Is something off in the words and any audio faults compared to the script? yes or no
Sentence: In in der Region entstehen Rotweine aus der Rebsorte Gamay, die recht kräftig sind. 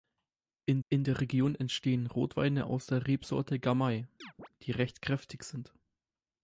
yes